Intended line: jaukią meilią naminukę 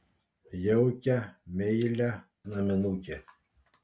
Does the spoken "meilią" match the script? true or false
true